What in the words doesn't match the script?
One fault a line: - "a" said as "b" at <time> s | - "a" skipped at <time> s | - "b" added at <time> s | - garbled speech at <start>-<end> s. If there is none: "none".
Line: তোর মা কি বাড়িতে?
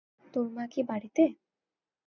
none